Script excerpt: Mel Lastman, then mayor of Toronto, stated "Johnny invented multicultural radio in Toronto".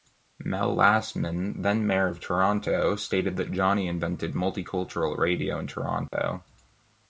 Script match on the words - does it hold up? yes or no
no